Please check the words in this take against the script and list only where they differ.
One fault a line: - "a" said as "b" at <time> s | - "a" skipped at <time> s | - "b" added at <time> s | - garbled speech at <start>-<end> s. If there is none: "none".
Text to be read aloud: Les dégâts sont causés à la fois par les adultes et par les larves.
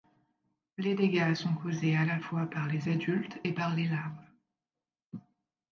none